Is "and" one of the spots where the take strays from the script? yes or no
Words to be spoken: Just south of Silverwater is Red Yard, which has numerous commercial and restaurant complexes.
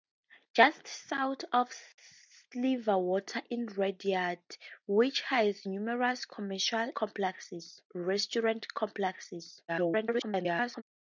yes